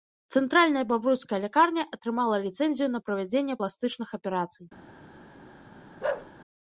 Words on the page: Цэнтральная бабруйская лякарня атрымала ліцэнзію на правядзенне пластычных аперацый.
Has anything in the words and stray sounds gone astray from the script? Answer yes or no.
yes